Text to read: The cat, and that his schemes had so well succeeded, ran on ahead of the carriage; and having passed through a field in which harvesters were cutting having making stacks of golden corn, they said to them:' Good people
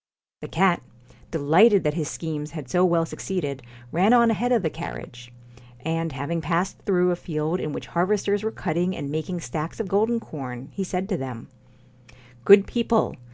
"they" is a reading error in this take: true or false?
true